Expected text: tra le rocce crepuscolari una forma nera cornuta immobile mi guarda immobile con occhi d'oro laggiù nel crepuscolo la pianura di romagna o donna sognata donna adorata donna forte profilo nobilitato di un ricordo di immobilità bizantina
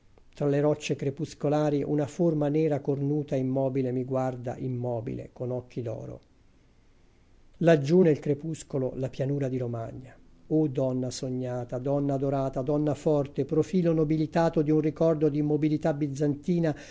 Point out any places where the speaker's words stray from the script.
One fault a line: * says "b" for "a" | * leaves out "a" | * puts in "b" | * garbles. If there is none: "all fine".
all fine